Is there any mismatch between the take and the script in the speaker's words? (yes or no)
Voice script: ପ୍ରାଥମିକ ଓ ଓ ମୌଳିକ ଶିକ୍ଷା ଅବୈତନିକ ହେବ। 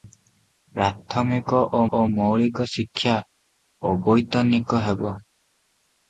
no